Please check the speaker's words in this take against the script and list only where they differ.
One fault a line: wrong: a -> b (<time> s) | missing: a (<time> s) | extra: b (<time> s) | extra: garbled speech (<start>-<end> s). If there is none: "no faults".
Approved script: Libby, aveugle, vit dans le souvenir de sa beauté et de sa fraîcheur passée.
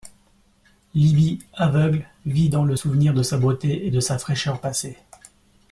no faults